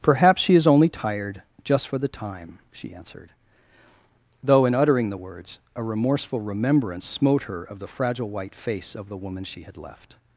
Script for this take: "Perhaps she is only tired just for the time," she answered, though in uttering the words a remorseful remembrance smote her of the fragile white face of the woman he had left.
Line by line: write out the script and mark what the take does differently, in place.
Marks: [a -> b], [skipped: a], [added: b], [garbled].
"Perhaps she is only tired just for the time," she answered, though in uttering the words a remorseful remembrance smote her of the fragile white face of the woman [he -> she] had left.